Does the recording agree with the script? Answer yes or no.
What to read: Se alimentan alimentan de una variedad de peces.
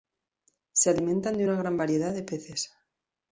no